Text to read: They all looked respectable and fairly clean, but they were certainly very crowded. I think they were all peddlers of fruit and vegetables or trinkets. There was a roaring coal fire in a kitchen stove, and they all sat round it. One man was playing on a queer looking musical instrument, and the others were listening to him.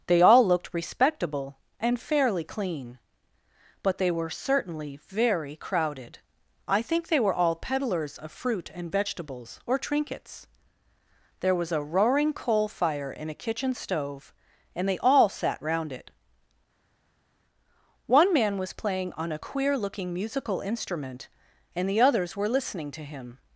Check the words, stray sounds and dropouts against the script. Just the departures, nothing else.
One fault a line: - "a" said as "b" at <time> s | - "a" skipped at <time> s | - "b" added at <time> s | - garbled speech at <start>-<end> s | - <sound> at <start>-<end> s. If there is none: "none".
none